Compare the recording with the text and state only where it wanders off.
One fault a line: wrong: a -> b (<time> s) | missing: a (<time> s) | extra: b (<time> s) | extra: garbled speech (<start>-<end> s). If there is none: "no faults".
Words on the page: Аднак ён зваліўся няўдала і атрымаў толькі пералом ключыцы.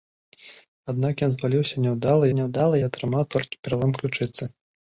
extra: няўдала (2.4 s)